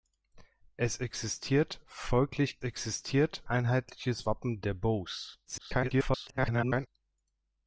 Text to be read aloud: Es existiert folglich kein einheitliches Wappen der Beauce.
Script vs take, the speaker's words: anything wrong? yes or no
yes